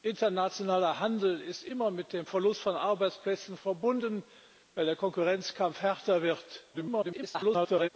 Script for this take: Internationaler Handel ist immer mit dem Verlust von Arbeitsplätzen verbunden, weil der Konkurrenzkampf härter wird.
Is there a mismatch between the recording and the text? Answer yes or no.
yes